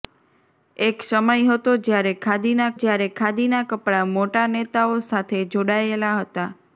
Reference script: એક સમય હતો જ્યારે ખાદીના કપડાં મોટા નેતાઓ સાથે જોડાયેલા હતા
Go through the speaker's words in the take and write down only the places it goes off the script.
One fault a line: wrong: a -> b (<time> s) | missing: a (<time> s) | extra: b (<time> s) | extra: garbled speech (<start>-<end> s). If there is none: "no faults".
extra: જ્યારે ખાદીના (2.8 s)